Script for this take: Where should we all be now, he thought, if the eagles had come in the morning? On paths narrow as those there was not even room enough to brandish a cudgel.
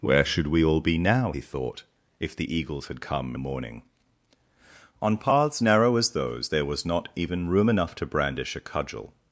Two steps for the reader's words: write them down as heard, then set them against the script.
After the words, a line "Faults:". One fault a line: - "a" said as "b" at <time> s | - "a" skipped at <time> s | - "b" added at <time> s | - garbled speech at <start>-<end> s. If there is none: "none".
Where should we all be now, he thought, if the eagles had come the morning? On paths narrow as those there was not even room enough to brandish a cudgel.
Faults:
- "in" skipped at 3.3 s